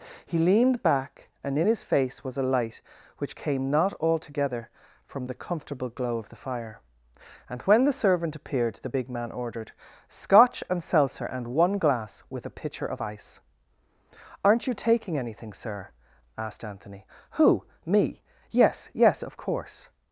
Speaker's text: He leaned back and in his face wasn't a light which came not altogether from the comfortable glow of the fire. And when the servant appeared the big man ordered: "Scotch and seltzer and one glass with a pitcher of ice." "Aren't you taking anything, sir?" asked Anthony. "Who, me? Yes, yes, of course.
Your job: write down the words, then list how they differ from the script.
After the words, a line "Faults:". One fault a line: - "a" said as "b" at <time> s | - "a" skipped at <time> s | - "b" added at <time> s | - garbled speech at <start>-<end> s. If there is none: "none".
He leaned back and in his face was a light which came not altogether from the comfortable glow of the fire. And when the servant appeared the big man ordered: "Scotch and seltzer and one glass with a pitcher of ice." "Aren't you taking anything, sir?" asked Anthony. "Who, me? Yes, yes, of course.
Faults:
- "wasn't" said as "was" at 2.2 s